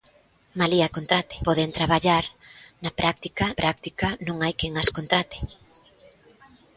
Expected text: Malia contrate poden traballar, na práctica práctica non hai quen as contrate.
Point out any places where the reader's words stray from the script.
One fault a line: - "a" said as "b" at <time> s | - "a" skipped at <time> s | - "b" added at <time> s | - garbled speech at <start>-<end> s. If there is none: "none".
none